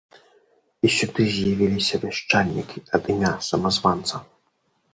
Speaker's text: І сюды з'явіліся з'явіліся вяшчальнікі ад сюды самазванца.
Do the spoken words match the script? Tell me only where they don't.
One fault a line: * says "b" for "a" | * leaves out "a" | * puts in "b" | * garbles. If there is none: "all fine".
* leaves out "з'явіліся"
* says "імя" for "сюды"